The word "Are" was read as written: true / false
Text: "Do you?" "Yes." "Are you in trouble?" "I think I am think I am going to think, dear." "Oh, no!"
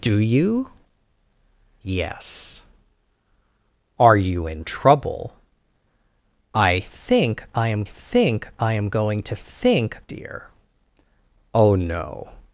true